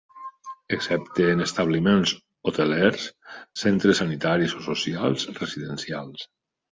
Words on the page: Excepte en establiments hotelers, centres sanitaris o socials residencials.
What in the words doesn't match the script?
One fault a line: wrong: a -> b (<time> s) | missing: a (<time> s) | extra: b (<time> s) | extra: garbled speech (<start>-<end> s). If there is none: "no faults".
no faults